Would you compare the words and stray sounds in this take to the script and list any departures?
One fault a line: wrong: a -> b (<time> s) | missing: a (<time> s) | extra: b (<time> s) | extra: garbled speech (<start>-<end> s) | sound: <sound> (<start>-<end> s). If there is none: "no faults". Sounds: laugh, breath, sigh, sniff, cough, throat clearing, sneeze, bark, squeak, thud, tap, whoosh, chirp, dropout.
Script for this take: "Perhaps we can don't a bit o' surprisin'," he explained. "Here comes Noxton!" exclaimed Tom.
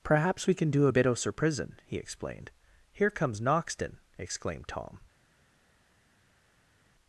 wrong: don't -> do (0.7 s)